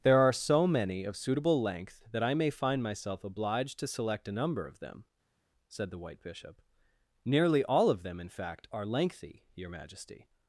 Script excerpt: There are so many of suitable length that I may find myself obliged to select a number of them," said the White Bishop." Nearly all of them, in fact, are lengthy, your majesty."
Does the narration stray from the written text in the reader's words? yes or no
no